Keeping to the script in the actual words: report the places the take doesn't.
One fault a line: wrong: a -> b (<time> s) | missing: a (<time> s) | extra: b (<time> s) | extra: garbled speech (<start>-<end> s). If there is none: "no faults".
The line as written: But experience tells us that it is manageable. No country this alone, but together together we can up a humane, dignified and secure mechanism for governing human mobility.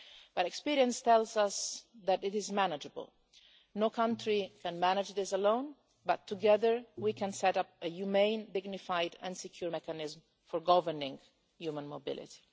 extra: can manage (4.6 s)
missing: together (6.8 s)
extra: set (7.3 s)